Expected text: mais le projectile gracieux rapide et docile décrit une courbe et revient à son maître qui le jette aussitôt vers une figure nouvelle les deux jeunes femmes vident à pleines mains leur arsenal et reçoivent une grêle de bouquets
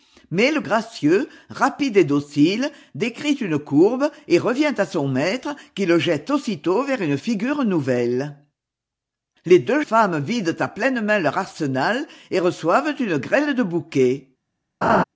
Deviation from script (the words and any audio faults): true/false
true